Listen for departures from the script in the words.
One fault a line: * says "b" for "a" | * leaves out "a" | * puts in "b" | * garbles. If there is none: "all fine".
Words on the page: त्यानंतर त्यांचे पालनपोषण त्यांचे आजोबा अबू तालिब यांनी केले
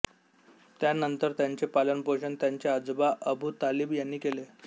all fine